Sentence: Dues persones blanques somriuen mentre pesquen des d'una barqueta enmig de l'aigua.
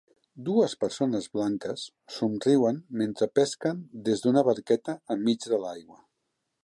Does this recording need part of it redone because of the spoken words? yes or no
no